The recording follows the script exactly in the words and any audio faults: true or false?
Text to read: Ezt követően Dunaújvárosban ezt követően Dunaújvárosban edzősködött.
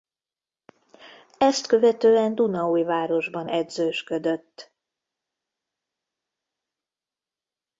false